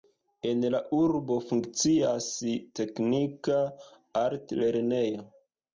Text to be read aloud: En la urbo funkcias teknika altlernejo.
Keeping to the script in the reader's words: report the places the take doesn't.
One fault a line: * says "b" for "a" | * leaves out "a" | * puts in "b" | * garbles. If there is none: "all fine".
all fine